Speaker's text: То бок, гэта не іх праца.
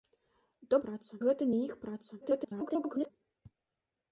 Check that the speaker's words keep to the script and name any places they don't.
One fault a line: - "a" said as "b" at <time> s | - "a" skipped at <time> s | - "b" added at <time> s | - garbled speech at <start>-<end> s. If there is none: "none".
- "бок" said as "праца" at 0.9 s
- garbled speech at 2.2-3.1 s